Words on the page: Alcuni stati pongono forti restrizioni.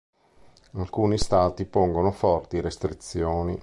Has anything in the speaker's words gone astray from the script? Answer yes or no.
no